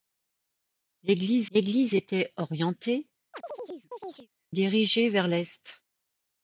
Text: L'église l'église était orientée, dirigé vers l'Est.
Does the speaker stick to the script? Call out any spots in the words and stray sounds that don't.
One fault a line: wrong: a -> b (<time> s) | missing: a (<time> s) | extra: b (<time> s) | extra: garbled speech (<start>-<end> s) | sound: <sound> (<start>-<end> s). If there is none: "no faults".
sound: chirp (3.3-4.3 s)